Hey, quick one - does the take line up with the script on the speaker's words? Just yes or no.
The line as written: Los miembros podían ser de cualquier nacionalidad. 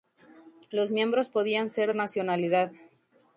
no